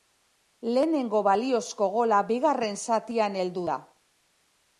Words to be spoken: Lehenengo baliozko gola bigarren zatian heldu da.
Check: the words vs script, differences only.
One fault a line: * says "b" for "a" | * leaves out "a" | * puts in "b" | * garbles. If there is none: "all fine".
all fine